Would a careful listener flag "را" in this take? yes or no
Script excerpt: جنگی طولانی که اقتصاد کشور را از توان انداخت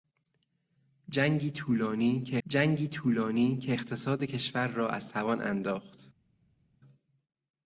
no